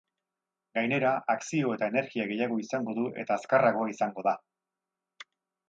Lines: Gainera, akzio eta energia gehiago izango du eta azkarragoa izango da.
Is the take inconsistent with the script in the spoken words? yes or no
no